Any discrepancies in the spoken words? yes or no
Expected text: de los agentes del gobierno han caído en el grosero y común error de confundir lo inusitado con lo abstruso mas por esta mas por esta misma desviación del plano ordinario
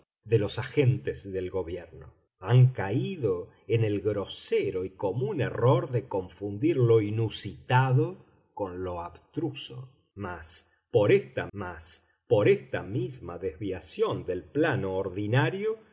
no